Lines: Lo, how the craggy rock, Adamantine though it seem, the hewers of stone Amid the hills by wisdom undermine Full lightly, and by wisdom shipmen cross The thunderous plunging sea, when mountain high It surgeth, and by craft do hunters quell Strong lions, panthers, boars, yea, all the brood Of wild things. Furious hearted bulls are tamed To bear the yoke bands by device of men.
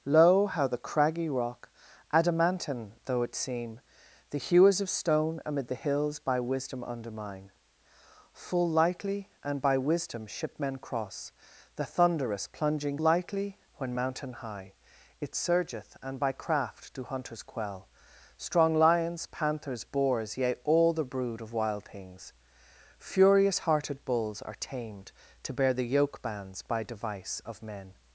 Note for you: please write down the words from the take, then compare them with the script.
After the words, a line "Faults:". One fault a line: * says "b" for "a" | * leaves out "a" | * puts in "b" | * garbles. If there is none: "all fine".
Lo, how the craggy rock, Adamantine though it seem, the hewers of stone Amid the hills by wisdom undermine Full lightly, and by wisdom shipmen cross The thunderous plunging lightly, when mountain high It surgeth, and by craft do hunters quell Strong lions, panthers, boars, yea, all the brood Of wild things. Furious hearted bulls are tamed To bear the yoke bands by device of men.
Faults:
* says "lightly" for "sea"